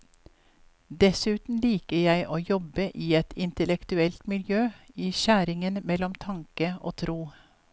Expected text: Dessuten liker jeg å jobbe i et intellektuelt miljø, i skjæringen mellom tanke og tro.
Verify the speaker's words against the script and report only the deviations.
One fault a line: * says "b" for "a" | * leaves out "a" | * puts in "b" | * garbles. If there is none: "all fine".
all fine